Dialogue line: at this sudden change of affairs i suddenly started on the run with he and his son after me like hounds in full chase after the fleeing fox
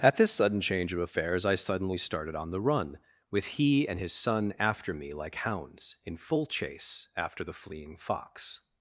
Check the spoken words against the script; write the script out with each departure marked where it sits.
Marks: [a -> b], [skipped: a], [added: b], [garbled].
at this sudden change of affairs i suddenly started on the run with he and his son after me like hounds in full chase after the fleeing fox